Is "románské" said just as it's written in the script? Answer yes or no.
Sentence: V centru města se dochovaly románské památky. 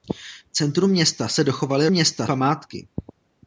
no